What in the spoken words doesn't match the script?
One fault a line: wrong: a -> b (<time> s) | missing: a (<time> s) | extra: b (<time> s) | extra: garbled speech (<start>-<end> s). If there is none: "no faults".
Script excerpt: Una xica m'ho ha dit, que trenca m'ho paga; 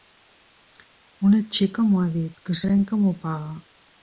no faults